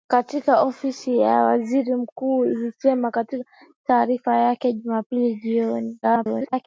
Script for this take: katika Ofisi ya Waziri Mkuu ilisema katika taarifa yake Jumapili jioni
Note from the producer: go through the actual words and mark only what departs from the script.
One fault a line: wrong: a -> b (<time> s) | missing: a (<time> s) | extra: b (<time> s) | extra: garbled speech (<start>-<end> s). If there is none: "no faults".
extra: garbled speech (6.0-6.7 s)